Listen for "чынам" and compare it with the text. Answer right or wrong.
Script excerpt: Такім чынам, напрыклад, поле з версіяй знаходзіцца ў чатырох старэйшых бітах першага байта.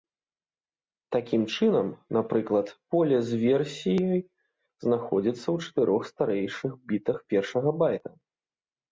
right